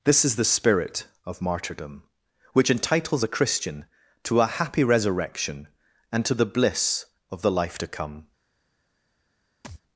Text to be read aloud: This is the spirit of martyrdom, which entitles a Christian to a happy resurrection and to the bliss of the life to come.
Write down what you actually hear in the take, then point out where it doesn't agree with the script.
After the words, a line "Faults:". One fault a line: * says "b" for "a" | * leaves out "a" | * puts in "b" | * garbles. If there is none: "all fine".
This is the spirit of martyrdom, which entitles a Christian to a happy resurrection and to the bliss of the life to come.
Faults:
all fine